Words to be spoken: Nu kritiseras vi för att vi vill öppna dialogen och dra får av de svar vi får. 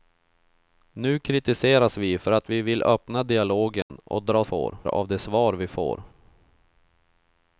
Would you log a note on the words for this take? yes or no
no